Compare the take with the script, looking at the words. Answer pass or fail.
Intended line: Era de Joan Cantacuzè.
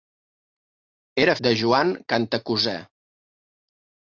pass